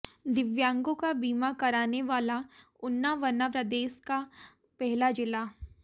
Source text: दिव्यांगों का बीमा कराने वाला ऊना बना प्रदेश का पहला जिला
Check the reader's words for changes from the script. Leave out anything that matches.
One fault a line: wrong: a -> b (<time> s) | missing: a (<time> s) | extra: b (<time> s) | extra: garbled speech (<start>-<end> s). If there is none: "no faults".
no faults